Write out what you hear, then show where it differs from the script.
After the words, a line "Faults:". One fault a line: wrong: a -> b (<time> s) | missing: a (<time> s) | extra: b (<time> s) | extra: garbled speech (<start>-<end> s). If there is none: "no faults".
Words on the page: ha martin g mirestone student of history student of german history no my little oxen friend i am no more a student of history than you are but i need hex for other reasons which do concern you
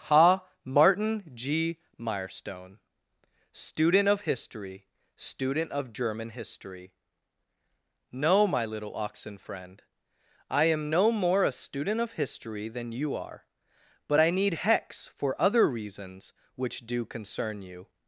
ha martin g mirestone student of history student of german history no my little oxen friend i am no more a student of history than you are but i need hex for other reasons which do concern you
Faults:
no faults